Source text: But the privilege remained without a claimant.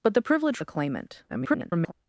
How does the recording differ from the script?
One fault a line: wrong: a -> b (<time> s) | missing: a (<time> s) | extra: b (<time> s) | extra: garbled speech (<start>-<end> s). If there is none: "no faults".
missing: remained without (0.6 s)
extra: garbled speech (1.3-1.9 s)